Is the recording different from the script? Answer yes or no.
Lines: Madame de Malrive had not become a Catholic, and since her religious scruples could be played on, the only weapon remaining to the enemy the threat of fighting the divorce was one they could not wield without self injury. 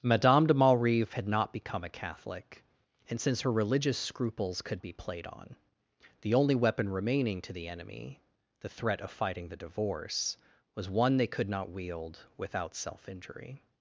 no